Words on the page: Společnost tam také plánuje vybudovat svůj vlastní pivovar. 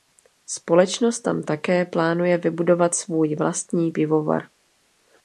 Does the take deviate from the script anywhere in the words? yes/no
no